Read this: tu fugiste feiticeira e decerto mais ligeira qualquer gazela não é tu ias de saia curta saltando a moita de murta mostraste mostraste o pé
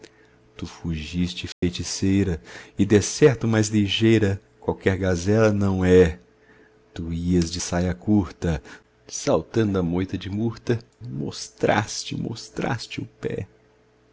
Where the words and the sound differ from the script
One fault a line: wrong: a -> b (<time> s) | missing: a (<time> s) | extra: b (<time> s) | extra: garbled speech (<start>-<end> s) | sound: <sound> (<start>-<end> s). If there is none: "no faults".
sound: dropout (1.5-1.6 s)